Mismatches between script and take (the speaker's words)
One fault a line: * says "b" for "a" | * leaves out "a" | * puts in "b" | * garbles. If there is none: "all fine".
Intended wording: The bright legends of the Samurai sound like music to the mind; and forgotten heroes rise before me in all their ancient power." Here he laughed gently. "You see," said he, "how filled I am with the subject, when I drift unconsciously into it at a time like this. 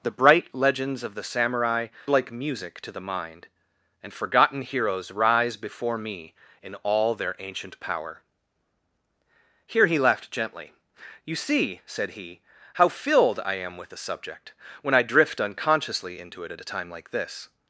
* leaves out "sound"